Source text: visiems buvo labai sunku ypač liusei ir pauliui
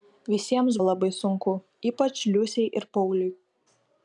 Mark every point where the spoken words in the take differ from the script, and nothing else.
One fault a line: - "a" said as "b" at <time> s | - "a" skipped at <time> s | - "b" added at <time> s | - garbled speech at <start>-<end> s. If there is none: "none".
- "buvo" skipped at 0.8 s